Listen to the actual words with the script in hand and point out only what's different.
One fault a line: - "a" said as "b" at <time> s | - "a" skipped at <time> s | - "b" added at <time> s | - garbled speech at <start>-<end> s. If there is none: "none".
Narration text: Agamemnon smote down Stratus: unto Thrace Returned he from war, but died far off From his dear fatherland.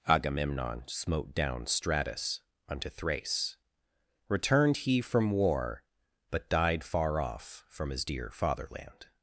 none